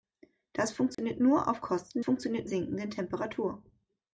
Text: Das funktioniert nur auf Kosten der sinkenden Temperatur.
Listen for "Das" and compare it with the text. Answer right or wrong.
right